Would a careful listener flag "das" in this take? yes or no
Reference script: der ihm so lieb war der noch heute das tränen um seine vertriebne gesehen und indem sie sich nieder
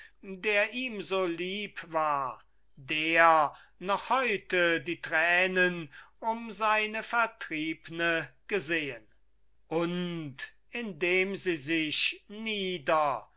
yes